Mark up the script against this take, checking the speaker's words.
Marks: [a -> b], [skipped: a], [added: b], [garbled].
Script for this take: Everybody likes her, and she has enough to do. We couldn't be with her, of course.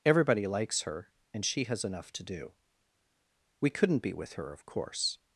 Everybody likes her, and she has enough to do. We couldn't be with her, of course.